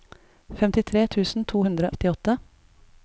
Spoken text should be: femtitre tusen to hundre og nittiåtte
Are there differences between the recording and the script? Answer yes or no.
yes